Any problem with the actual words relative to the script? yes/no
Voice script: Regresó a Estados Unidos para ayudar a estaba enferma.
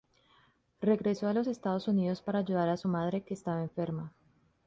yes